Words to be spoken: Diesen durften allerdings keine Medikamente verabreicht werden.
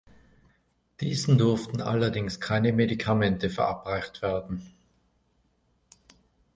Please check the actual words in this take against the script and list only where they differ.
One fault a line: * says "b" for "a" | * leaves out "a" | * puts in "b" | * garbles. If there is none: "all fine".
all fine